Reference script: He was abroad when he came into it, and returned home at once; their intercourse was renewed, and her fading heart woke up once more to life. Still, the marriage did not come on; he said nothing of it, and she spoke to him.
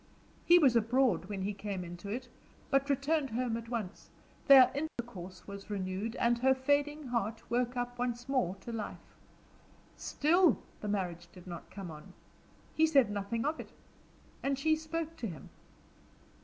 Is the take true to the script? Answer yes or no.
no